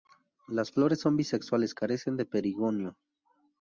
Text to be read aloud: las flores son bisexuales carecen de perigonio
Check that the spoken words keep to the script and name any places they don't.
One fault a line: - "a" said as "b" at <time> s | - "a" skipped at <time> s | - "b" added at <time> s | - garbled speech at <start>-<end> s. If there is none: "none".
none